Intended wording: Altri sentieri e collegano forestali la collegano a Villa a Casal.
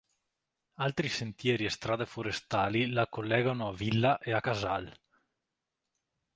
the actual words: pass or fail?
fail